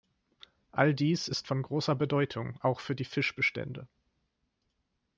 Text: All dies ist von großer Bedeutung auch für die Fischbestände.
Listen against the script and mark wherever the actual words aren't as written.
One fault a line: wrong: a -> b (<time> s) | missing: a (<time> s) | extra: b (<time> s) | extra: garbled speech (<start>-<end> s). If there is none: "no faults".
no faults